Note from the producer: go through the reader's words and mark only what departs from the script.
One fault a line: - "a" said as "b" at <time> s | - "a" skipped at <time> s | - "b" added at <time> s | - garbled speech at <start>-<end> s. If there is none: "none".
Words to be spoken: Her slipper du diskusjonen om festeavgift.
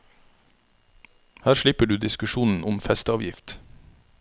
none